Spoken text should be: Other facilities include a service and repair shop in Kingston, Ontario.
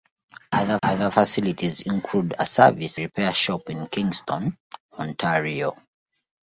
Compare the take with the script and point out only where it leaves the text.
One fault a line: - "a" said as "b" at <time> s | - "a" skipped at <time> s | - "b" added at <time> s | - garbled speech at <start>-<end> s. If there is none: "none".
- "other" added at 0.8 s
- "and" skipped at 3.0 s